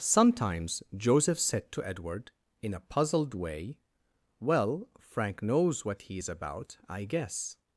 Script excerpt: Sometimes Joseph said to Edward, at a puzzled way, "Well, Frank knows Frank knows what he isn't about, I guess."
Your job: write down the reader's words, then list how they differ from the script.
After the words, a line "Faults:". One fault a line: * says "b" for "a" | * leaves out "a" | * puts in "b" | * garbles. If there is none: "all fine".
Sometimes Joseph said to Edward, in a puzzled way, "Well, Frank knows what he is about, I guess."
Faults:
* says "in" for "at"
* leaves out "Frank knows"
* says "is" for "isn't"